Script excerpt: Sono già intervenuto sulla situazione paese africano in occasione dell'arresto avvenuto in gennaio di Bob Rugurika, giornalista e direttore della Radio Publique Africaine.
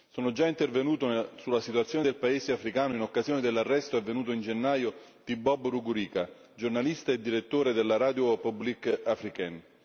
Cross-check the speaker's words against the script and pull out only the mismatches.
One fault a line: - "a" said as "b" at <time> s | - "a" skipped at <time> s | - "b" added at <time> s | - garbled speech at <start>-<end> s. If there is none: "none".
- "del" added at 2.0 s